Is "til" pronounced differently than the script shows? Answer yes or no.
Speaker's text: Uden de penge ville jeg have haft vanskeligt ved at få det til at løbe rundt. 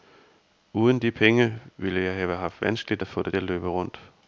yes